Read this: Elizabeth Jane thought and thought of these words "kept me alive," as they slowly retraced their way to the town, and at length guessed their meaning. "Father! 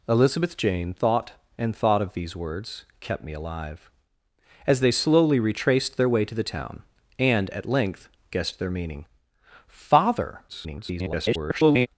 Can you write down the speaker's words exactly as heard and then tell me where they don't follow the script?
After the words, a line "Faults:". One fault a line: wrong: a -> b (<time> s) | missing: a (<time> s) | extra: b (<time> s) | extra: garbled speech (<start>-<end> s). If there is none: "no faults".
Elizabeth Jane thought and thought of these words "kept me alive," as they slowly retraced their way to the town, and at length guessed their meaning. "Father! [garbled]
Faults:
extra: garbled speech (10.5-11.9 s)